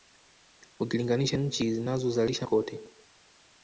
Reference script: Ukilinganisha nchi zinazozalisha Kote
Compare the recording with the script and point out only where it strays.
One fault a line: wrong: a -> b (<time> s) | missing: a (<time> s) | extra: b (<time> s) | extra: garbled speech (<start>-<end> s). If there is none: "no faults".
no faults